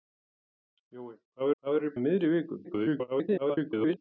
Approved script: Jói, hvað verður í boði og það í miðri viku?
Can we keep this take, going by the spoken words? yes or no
no